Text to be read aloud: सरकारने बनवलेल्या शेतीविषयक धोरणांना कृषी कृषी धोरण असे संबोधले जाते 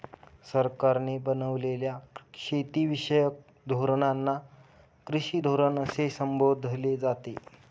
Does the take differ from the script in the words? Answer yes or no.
yes